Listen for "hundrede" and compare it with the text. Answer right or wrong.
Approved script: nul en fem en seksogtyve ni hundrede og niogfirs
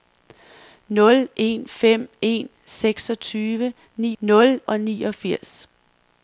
wrong